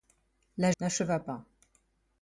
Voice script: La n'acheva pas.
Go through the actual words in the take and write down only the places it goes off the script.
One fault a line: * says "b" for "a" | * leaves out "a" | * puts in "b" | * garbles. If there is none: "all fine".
all fine